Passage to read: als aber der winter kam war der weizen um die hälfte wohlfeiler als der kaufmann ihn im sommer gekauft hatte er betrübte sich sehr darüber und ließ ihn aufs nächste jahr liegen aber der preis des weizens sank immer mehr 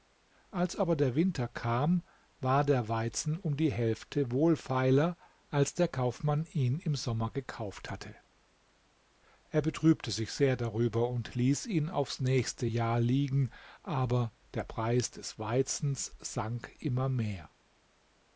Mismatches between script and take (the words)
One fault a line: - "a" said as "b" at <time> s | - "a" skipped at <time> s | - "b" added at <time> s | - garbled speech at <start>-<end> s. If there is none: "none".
none